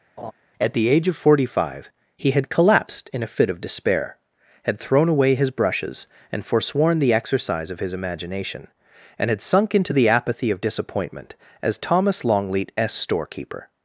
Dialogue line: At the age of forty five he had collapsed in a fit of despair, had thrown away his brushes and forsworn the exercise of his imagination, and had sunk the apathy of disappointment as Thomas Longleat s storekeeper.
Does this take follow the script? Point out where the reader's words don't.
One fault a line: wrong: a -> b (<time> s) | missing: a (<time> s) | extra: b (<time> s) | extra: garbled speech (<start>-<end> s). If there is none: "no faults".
extra: into (9.8 s)